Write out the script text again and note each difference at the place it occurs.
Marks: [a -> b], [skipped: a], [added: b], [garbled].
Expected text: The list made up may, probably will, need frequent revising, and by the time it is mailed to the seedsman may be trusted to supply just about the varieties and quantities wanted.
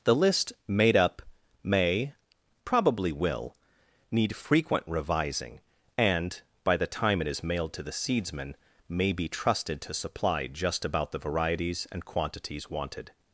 The list made up may, probably will, need frequent revising, and by the time it is mailed to the seedsman may be trusted to supply just about the varieties and quantities wanted.